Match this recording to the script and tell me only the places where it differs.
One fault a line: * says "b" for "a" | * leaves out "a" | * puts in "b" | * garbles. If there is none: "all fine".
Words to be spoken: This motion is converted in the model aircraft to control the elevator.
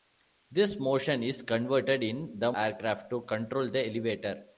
* leaves out "model"